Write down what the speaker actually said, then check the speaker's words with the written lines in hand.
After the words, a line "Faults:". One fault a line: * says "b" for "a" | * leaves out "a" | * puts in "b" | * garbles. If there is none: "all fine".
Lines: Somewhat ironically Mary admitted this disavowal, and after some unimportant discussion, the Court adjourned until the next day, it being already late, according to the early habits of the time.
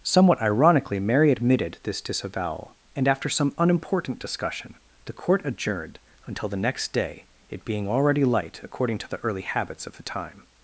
Somewhat ironically Mary admitted this disavowal, and after some unimportant discussion, the Court adjourned until the next day, it being already light, according to the early habits of the time.
Faults:
* says "light" for "late"